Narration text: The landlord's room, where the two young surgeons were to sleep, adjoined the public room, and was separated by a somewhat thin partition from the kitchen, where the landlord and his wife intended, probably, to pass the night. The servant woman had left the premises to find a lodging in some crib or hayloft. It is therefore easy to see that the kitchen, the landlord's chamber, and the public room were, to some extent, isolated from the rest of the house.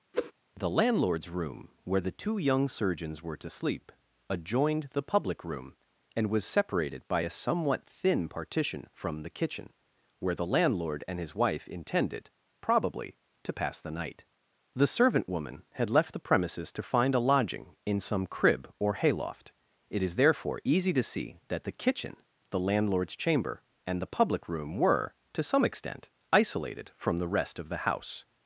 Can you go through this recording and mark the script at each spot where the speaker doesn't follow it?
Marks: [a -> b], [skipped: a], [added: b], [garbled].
The landlord's room, where the two young surgeons were to sleep, adjoined the public room, and was separated by a somewhat thin partition from the kitchen, where the landlord and his wife intended, probably, to pass the night. The servant woman had left the premises to find a lodging in some crib or hayloft. It is therefore easy to see that the kitchen, the landlord's chamber, and the public room were, to some extent, isolated from the rest of the house.